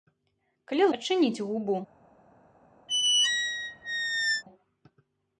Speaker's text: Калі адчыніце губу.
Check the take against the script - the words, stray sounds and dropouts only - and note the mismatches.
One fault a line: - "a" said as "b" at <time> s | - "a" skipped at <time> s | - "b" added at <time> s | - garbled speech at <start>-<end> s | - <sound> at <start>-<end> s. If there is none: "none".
- squeak at 2.9-4.4 s